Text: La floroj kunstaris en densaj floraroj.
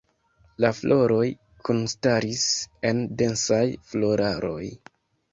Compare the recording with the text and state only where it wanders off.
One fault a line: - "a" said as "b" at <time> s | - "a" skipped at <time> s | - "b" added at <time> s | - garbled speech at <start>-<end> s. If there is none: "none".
none